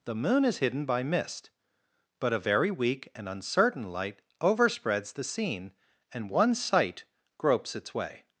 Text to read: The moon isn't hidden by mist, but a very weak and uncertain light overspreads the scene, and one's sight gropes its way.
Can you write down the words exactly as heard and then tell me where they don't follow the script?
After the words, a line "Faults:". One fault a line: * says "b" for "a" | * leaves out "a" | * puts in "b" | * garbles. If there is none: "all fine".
The moon is hidden by mist, but a very weak and uncertain light overspreads the scene, and one's sight gropes its way.
Faults:
* says "is" for "isn't"